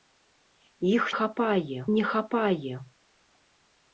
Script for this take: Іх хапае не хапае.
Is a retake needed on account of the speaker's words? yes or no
no